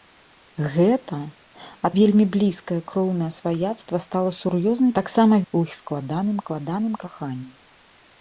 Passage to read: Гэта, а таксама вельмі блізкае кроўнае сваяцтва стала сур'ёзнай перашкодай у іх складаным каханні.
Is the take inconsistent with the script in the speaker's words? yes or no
yes